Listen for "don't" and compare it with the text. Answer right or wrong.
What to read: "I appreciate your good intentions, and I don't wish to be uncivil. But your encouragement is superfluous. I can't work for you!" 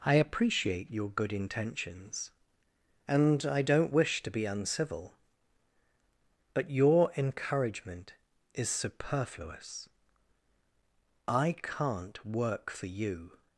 right